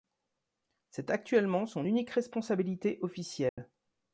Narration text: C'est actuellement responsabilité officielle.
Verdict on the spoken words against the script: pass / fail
fail